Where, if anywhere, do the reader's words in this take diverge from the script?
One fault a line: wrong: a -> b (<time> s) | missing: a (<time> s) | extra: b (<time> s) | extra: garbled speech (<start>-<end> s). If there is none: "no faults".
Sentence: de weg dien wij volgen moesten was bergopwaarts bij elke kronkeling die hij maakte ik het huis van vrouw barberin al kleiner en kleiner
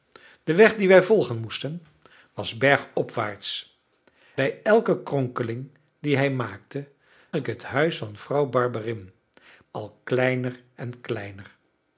no faults